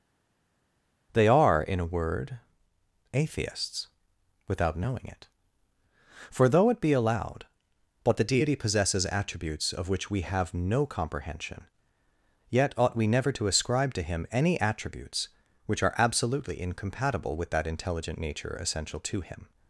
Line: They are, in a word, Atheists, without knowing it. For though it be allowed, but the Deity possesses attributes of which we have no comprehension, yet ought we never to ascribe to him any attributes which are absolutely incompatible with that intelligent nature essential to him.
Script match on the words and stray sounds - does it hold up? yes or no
yes